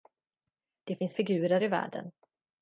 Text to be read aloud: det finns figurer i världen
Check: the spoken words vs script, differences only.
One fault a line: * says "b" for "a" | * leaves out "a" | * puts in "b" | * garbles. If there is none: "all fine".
all fine